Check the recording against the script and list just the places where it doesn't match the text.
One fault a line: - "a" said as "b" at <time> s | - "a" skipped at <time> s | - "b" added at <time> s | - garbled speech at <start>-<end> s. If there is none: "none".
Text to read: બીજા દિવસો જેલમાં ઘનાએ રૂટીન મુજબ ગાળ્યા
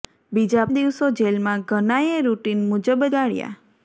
none